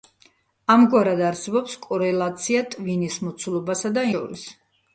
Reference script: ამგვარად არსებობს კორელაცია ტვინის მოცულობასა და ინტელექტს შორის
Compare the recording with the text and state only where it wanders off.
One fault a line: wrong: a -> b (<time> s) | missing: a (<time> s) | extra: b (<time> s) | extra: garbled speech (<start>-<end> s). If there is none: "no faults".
missing: ინტელექტს (4.1 s)